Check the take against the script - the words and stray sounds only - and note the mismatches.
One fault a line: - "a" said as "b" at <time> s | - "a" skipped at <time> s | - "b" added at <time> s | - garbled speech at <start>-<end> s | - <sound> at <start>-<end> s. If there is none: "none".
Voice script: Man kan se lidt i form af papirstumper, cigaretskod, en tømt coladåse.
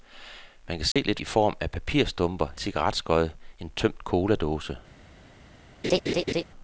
- dropout at 0.9-1.0 s
- laugh at 5.8-6.4 s